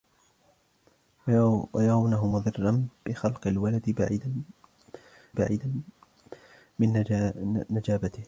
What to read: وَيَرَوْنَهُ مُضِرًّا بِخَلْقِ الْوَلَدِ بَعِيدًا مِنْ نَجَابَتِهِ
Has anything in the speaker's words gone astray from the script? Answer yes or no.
yes